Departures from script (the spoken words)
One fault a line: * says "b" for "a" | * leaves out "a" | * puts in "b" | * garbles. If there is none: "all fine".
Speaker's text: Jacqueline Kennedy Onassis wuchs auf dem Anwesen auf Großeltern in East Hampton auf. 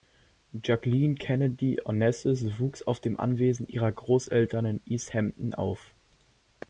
* says "ihrer" for "auf"